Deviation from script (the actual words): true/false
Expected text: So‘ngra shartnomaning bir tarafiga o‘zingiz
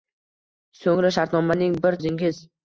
true